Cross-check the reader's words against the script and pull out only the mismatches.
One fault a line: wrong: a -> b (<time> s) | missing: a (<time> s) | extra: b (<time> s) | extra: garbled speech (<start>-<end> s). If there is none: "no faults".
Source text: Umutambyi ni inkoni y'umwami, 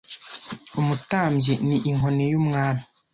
no faults